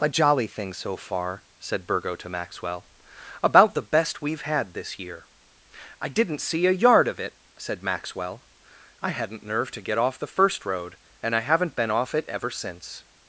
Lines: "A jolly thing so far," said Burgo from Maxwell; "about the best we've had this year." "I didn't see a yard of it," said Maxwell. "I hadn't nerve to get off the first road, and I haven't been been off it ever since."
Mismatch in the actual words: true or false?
true